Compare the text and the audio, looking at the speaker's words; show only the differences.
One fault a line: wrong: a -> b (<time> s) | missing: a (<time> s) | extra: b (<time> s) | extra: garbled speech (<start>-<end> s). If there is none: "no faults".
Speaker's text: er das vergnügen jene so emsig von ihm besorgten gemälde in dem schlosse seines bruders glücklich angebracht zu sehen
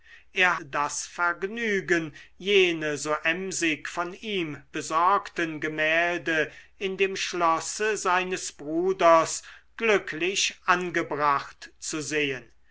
no faults